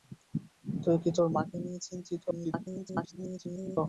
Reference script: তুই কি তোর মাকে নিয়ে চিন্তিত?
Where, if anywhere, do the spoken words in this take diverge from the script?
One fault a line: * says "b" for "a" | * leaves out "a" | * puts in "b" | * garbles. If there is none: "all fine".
* garbles